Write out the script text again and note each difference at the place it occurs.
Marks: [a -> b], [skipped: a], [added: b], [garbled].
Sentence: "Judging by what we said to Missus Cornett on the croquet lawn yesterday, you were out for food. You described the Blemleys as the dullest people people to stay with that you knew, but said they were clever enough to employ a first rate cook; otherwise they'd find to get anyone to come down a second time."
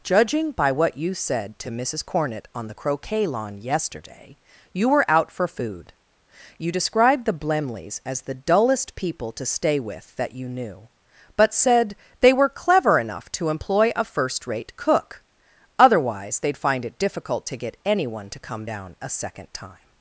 "Judging by what [we -> you] said to Missus Cornett on the croquet lawn yesterday, you were out for food. You described the Blemleys as the dullest people [skipped: people] to stay with that you knew, but said they were clever enough to employ a first rate cook; otherwise they'd find [added: it difficult] to get anyone to come down a second time."